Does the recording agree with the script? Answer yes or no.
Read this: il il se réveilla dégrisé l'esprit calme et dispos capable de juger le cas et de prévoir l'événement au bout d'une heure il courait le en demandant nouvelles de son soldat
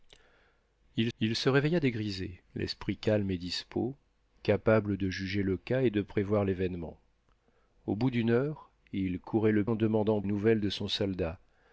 yes